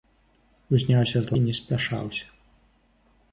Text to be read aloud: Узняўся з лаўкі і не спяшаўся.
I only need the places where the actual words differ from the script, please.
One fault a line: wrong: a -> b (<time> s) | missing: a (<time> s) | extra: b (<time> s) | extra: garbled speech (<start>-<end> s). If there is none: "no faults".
missing: лаўкі (1.4 s)